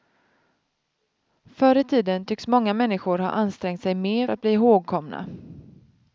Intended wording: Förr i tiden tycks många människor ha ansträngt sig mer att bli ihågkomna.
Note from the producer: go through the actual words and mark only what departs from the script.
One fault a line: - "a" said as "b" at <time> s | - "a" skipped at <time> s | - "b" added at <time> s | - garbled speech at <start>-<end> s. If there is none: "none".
none